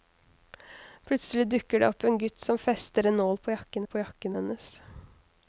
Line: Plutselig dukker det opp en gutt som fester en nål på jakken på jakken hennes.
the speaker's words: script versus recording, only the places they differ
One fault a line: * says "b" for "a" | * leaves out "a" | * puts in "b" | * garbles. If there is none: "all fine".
all fine